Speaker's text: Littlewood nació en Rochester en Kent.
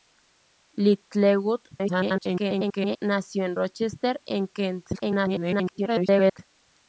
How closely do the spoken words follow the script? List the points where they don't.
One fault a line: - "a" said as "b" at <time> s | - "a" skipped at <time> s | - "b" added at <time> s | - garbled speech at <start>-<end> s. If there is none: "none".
- garbled speech at 1.7-3.0 s
- garbled speech at 4.9-6.4 s